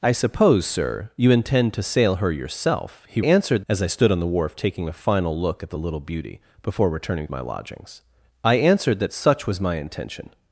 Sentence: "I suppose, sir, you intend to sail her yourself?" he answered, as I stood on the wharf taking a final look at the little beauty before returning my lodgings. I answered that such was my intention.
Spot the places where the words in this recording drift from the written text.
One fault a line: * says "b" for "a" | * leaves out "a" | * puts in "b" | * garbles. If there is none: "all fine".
all fine